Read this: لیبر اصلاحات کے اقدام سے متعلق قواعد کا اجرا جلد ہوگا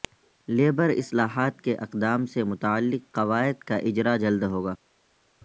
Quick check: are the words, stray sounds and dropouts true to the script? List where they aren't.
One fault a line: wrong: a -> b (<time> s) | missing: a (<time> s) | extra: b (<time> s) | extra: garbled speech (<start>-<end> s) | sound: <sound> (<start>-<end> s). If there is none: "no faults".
no faults